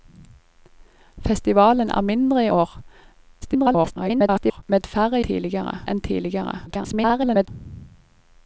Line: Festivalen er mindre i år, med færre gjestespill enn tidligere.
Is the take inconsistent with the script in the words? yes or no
yes